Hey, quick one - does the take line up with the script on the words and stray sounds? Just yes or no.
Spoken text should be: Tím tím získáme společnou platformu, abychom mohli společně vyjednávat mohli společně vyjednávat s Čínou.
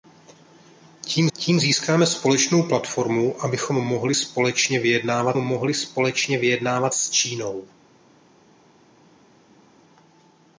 yes